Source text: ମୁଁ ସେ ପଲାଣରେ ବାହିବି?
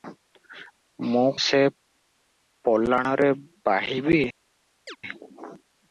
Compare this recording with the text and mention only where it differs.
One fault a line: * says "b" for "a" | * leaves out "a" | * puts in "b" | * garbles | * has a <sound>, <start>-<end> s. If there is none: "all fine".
* has a chirp, 4.9-5.0 s